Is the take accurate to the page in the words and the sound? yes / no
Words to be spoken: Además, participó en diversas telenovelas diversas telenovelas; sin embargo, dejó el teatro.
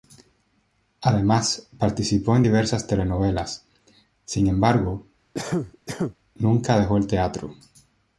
no